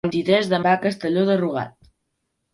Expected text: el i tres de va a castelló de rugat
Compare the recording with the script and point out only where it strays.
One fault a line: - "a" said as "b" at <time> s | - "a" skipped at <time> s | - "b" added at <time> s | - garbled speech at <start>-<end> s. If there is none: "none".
none